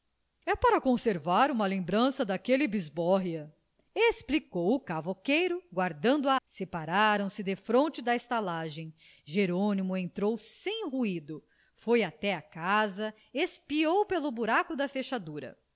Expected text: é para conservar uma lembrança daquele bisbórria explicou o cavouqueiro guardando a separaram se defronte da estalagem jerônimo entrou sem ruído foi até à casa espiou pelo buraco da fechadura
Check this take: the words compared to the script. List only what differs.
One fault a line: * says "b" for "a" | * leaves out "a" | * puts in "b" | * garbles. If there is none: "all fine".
all fine